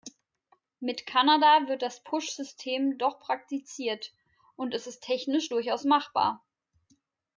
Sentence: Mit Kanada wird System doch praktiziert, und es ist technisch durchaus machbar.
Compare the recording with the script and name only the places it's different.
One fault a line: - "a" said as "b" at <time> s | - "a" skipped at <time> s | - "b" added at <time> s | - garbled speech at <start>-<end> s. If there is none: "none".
- "das Push" added at 1.8 s